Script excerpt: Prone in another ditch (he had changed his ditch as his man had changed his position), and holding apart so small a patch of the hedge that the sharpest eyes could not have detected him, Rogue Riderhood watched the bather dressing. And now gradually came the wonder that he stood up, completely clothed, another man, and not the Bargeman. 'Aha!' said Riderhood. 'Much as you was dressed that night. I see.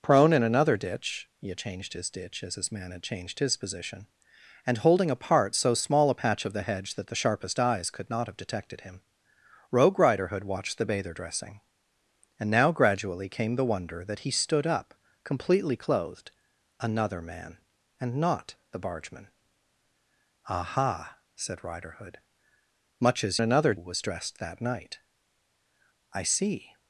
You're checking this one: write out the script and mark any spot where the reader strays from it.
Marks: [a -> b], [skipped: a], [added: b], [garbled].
Prone in another ditch (he had changed his ditch as his man had changed his position), and holding apart so small a patch of the hedge that the sharpest eyes could not have detected him, Rogue Riderhood watched the bather dressing. And now gradually came the wonder that he stood up, completely clothed, another man, and not the Bargeman. 'Aha!' said Riderhood. 'Much as [you -> another] was dressed that night. I see.